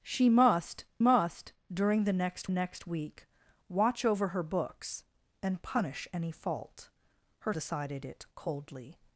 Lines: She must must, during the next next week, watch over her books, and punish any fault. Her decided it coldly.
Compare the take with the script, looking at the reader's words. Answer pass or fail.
pass